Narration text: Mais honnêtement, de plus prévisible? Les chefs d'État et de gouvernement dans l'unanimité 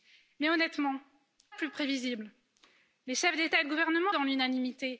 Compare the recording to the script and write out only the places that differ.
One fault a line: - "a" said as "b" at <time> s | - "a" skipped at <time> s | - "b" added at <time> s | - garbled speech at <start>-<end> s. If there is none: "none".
none